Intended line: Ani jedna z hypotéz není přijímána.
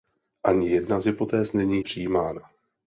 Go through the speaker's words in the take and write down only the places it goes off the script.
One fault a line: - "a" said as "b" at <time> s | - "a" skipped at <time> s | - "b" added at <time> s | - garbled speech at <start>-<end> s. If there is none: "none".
none